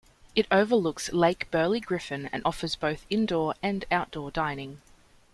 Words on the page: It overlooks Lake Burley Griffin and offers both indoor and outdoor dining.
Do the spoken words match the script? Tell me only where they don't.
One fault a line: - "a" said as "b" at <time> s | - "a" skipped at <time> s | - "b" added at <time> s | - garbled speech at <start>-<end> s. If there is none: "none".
none